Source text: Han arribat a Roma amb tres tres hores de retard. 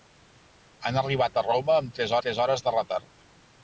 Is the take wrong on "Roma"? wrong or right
right